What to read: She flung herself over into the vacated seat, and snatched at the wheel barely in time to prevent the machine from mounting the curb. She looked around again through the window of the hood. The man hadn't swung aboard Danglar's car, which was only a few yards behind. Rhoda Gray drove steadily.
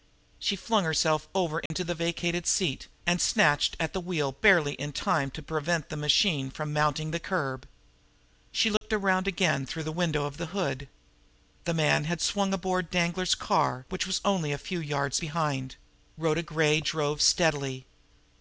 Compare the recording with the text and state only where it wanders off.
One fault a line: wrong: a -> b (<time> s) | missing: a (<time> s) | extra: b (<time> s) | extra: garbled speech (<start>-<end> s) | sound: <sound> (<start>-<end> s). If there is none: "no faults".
sound: dropout (1.7-1.7 s)
sound: dropout (8.8-8.8 s)
wrong: hadn't -> had (12.0 s)